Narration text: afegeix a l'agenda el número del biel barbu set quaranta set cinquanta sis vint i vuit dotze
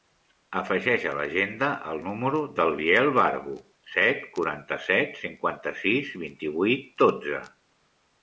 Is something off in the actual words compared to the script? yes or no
no